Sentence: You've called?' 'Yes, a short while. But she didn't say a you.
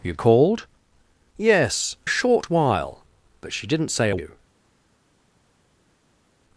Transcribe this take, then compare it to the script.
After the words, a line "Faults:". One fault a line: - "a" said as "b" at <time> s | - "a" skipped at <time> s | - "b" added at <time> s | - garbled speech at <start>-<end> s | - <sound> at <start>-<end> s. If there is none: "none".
You've called?' 'Yes, a short while. But she didn't say a you.
Faults:
none